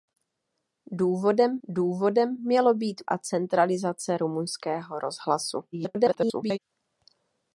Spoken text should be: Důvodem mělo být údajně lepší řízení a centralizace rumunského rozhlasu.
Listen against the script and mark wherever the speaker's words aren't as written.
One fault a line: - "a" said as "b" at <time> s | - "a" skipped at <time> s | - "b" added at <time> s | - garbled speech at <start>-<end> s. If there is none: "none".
- "důvodem" added at 1.7 s
- "údajně lepší řízení" skipped at 3.0 s
- garbled speech at 5.7-6.6 s